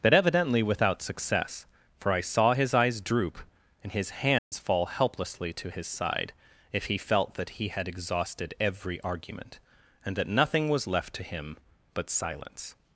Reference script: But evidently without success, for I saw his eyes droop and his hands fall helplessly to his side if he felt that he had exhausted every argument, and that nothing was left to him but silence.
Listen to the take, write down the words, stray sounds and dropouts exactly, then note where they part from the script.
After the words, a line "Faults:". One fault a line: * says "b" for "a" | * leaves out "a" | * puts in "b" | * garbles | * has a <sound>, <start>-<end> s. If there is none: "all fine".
But evidently without success, for I saw his eyes droop and his hands fall helplessly to his side if he felt that he had exhausted every argument, and that nothing was left to him but silence.
Faults:
* has a dropout, 4.4-4.5 s